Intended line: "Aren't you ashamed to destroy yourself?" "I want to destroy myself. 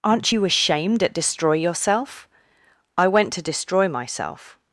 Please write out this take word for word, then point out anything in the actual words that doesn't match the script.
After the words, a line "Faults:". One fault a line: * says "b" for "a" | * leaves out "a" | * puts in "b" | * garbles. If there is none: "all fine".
"Aren't you ashamed at destroy yourself?" "I went to destroy myself.
Faults:
* says "at" for "to"
* says "went" for "want"